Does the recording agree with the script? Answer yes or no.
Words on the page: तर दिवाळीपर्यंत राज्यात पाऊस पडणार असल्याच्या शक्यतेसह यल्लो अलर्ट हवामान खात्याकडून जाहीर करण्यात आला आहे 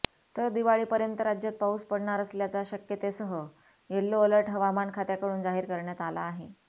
yes